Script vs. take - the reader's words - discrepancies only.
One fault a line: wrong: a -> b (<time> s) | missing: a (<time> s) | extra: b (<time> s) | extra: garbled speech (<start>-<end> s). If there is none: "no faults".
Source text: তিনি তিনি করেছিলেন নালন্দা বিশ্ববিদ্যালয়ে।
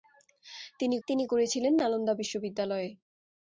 no faults